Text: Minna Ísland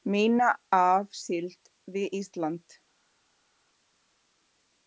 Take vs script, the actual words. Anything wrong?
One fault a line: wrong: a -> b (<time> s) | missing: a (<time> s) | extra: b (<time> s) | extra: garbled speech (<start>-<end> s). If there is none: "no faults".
extra: af síld við (0.8 s)